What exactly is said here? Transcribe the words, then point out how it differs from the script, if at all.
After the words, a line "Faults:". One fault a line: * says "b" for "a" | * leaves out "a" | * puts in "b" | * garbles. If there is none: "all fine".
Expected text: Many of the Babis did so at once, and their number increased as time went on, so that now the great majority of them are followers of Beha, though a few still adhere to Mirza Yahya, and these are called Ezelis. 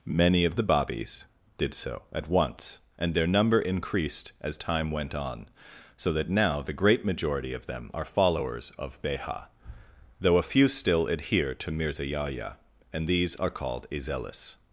Many of the Babis did so at once, and their number increased as time went on, so that now the great majority of them are followers of Beha, though a few still adhere to Mirza Yahya, and these are called Ezelis.
Faults:
all fine